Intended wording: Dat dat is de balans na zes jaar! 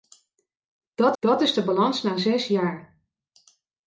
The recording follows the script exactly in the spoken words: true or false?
true